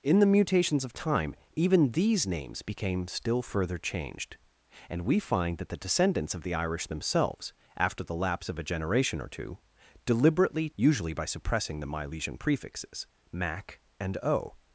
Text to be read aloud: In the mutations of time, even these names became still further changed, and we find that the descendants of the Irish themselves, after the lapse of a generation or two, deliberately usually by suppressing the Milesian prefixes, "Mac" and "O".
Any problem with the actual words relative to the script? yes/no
no